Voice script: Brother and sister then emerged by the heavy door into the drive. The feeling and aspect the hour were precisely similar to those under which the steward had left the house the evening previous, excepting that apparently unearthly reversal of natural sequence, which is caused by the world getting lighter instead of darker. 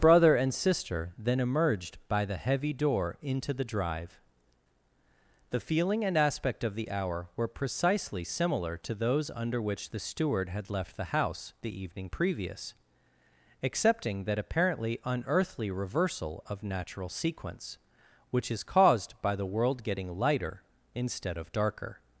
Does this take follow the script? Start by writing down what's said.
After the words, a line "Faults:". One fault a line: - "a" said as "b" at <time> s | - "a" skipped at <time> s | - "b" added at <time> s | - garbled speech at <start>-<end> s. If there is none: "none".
Brother and sister then emerged by the heavy door into the drive. The feeling and aspect of the hour were precisely similar to those under which the steward had left the house the evening previous, excepting that apparently unearthly reversal of natural sequence, which is caused by the world getting lighter instead of darker.
Faults:
- "of" added at 6.6 s